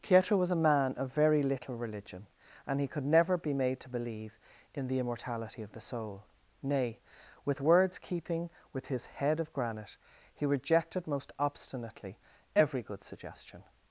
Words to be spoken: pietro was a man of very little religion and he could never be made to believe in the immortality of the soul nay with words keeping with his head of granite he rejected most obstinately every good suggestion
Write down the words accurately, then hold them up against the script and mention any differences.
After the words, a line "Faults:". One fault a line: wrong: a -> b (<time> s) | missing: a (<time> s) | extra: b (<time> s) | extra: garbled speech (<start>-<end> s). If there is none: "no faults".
pietro was a man of very little religion and he could never be made to believe in the immortality of the soul nay with words keeping with his head of granite he rejected most obstinately every good suggestion
Faults:
no faults